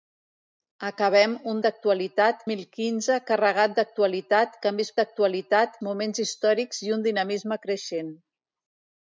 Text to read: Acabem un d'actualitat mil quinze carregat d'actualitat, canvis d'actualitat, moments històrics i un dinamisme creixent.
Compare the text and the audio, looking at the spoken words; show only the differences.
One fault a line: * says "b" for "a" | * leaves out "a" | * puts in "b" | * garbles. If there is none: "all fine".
all fine